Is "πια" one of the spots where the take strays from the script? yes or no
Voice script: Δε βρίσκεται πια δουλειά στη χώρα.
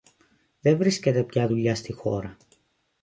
no